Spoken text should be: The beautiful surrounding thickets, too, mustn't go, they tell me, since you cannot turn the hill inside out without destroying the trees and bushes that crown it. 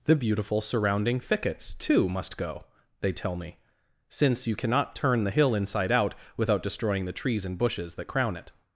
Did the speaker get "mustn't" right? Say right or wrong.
wrong